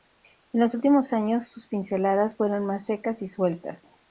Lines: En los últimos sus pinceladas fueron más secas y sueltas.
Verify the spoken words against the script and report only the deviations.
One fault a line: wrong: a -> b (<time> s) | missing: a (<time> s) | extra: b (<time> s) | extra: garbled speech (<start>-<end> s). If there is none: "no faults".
extra: años (1.1 s)